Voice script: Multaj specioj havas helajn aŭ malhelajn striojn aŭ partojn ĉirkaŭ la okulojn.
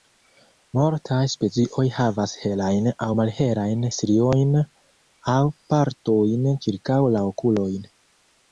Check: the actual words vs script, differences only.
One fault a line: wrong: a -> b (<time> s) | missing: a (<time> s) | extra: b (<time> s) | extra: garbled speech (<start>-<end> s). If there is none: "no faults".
no faults